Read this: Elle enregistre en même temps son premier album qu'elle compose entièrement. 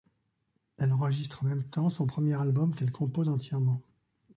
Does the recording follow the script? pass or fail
pass